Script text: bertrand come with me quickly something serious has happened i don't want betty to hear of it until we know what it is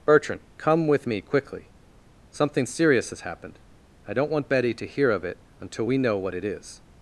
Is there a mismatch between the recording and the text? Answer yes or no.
no